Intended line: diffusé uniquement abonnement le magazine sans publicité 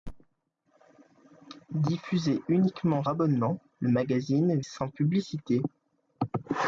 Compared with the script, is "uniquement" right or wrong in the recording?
right